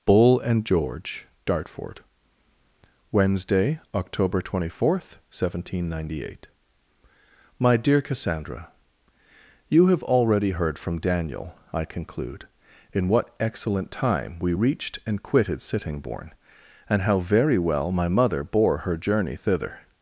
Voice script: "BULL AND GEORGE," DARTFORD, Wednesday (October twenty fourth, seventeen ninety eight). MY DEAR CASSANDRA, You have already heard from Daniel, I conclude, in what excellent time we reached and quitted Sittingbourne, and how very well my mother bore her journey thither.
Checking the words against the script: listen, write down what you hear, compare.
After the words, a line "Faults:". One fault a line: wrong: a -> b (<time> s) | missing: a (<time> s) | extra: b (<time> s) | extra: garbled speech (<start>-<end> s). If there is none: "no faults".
"BULL AND GEORGE," DARTFORD, Wednesday (October twenty fourth, seventeen ninety eight). MY DEAR CASSANDRA, You have already heard from Daniel, I conclude, in what excellent time we reached and quitted Sittingbourne, and how very well my mother bore her journey thither.
Faults:
no faults